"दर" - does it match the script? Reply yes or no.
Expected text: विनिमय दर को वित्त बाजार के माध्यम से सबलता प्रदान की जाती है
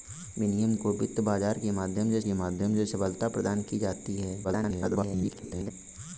no